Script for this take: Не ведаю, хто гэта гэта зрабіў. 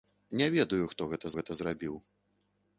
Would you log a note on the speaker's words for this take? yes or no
no